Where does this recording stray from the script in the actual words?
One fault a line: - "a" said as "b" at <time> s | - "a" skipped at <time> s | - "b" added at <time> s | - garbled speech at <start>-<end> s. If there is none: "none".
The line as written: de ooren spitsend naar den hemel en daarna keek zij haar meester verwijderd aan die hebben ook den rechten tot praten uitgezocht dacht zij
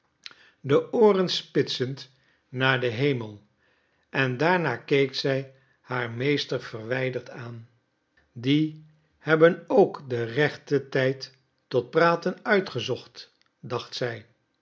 - "tijd" added at 10.9 s